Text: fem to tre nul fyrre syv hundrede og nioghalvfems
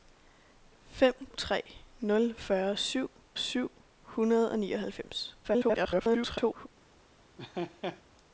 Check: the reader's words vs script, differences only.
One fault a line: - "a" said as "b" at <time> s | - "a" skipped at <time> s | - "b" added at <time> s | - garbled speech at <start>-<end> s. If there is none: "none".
- "to" skipped at 1.3 s
- "syv" added at 3.4 s
- garbled speech at 5.4-6.7 s